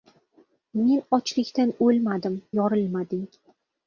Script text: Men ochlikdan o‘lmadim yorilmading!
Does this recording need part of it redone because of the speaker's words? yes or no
no